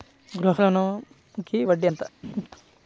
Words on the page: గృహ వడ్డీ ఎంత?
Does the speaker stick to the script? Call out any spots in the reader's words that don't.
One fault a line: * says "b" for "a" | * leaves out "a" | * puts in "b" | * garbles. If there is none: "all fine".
* puts in "ఋణంకి"